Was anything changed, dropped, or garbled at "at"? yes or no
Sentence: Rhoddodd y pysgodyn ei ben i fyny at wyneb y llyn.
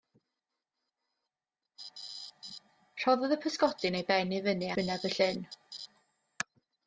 yes